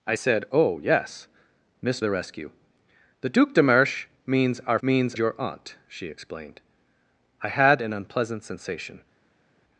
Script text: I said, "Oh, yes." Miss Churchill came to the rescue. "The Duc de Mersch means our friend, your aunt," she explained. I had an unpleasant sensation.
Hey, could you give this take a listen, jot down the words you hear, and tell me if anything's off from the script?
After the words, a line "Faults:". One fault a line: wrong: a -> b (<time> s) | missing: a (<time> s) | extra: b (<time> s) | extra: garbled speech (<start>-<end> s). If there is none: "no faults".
I said, "Oh, yes." Miss The rescue. "The Duc de Mersch means our means, your aunt," she explained. I had an unpleasant sensation.
Faults:
missing: Churchill came to (2.0 s)
wrong: friend -> means (4.8 s)